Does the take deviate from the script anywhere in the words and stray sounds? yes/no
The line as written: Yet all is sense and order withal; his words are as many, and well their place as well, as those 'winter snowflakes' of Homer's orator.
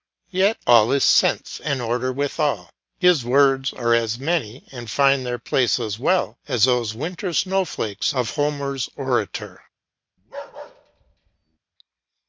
yes